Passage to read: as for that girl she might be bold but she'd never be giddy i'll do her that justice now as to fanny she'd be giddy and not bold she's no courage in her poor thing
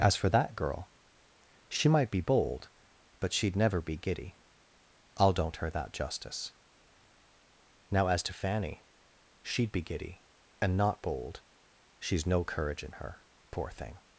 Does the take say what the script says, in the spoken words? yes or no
no